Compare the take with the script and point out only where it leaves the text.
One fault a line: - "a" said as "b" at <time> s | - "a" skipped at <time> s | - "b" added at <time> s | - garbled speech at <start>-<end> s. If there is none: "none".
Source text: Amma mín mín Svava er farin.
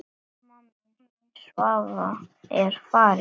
none